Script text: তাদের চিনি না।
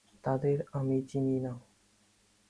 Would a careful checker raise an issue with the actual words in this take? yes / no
yes